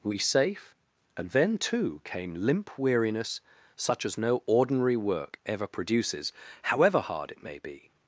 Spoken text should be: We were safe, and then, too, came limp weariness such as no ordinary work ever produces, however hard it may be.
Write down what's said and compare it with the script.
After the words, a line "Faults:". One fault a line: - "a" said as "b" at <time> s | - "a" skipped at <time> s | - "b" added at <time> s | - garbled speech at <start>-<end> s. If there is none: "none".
We safe, and then, too, came limp weariness such as no ordinary work ever produces, however hard it may be.
Faults:
- "were" skipped at 0.2 s